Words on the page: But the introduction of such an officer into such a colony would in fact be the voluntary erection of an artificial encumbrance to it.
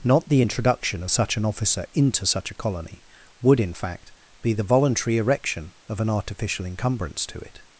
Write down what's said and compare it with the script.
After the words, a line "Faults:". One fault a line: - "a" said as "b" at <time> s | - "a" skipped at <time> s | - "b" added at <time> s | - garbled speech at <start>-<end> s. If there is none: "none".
Not the introduction of such an officer into such a colony would in fact be the voluntary erection of an artificial encumbrance to it.
Faults:
- "But" said as "Not" at 0.0 s